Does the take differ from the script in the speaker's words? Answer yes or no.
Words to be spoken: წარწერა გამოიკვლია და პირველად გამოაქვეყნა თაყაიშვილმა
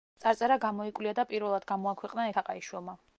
no